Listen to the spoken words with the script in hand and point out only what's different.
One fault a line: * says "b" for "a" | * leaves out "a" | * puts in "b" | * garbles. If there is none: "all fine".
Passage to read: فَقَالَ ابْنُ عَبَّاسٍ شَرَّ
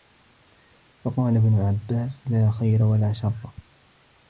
* puts in "لَا خَيْرَ وَلَا"